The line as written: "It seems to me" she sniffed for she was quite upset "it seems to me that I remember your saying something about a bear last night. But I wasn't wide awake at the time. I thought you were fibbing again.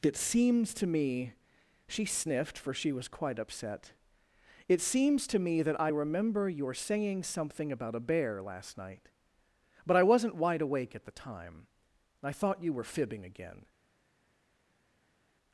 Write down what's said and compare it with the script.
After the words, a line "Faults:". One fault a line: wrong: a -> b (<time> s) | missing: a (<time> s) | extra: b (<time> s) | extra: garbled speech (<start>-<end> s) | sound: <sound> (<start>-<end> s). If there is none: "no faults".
"It seems to me" she sniffed for she was quite upset "it seems to me that I remember your saying something about a bear last night. But I wasn't wide awake at the time. I thought you were fibbing again.
Faults:
no faults